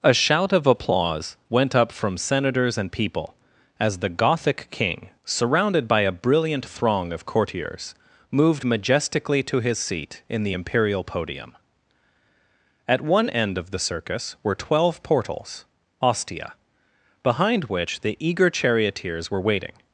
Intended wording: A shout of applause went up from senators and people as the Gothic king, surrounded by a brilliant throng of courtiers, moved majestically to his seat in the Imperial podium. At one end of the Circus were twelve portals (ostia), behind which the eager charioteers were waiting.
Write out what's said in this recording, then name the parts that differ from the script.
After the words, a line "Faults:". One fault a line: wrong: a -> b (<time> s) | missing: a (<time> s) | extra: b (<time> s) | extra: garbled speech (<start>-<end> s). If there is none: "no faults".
A shout of applause went up from senators and people as the Gothic king, surrounded by a brilliant throng of courtiers, moved majestically to his seat in the Imperial podium. At one end of the Circus were twelve portals (ostia), behind which the eager charioteers were waiting.
Faults:
no faults